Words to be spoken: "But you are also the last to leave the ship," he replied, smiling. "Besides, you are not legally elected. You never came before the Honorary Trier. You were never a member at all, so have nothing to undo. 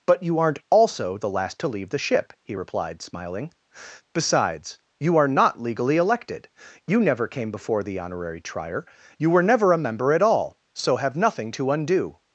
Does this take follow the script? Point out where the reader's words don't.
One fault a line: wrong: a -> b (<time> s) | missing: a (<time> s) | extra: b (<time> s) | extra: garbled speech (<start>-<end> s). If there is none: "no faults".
wrong: are -> aren't (0.4 s)